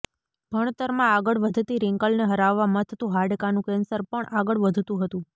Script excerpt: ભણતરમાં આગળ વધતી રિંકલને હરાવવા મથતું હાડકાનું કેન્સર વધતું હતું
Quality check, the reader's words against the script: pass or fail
fail